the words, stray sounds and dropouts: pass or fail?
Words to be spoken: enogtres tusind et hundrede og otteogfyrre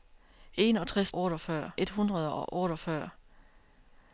fail